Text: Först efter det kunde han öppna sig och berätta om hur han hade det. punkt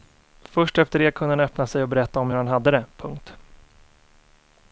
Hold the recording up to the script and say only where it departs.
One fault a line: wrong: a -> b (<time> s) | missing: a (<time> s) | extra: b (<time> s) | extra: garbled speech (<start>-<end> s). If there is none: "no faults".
no faults